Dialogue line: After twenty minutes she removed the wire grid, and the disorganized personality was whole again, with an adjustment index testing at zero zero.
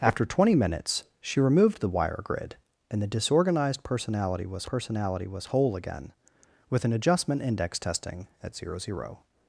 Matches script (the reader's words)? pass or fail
fail